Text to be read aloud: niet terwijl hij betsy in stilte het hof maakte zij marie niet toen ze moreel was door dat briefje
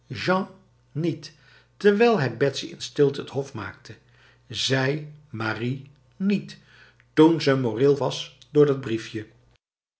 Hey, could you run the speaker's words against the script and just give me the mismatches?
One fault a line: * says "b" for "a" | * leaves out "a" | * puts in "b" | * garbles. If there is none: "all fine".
all fine